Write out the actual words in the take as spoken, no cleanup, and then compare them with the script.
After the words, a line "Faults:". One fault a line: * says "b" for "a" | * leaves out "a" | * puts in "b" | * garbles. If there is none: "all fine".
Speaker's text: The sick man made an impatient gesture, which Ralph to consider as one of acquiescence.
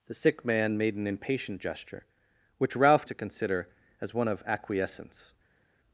The sick man made an impatient gesture, which Ralph to consider as one of acquiescence.
Faults:
all fine